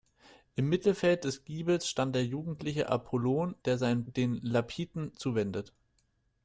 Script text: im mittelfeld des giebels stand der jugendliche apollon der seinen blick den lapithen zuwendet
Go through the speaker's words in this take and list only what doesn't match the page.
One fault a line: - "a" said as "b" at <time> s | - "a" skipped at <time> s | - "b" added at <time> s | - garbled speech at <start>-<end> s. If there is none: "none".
- "blick" skipped at 4.0 s